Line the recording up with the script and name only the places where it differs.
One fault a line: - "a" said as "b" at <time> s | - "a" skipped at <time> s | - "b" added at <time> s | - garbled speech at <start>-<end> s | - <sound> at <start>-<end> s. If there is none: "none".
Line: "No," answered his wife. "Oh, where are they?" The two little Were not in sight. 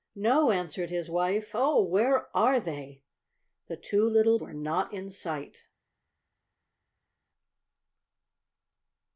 none